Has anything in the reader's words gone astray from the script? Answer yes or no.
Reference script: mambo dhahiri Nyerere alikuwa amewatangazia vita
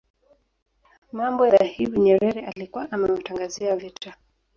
no